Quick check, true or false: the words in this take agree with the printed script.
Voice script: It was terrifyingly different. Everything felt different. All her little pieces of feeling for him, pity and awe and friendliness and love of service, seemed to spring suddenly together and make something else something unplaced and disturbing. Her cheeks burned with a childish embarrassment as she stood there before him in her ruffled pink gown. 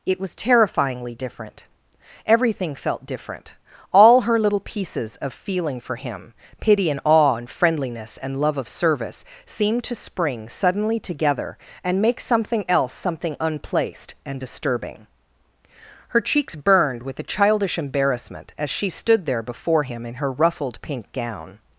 true